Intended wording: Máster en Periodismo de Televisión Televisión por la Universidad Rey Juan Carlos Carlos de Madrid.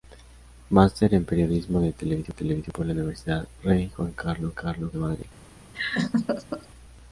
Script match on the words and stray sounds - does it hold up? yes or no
no